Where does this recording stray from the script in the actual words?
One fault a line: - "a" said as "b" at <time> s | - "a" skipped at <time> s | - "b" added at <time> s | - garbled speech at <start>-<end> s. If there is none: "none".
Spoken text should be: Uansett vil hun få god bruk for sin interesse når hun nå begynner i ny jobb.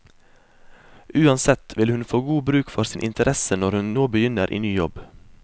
none